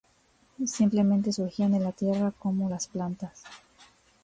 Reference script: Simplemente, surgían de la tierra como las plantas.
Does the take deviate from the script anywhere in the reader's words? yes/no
no